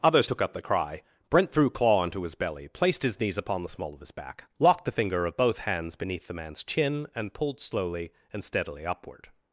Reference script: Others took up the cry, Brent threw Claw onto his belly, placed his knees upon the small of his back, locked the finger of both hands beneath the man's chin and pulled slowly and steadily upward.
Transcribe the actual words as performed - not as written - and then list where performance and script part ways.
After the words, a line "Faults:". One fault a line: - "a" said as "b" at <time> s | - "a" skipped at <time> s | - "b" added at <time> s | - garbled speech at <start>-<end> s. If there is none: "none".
Others took up the cry, Brent threw Claw onto his belly, placed his knees upon the small of his back, locked the finger of both hands beneath the man's chin and pulled slowly and steadily upward.
Faults:
none